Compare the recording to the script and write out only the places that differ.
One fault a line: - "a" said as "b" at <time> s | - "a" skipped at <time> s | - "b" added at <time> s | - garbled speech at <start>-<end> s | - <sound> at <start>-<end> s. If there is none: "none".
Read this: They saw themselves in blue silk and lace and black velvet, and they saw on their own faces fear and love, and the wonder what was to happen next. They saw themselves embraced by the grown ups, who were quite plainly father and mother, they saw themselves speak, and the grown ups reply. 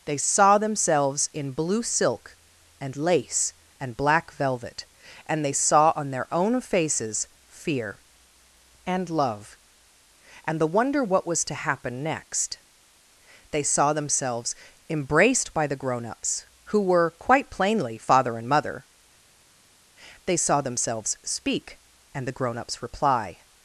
none